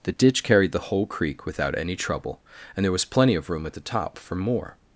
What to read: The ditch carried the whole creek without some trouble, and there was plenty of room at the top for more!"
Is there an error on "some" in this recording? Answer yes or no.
yes